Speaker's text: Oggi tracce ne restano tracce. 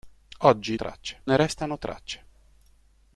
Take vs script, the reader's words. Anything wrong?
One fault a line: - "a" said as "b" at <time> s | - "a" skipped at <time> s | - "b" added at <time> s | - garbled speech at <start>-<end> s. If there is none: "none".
none